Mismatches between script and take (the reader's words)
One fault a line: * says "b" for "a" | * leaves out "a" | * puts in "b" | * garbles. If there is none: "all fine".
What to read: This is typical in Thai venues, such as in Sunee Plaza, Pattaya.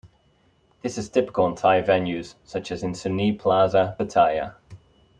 all fine